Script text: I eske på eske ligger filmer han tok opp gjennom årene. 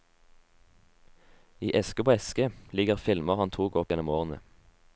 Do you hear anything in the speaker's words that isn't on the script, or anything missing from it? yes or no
no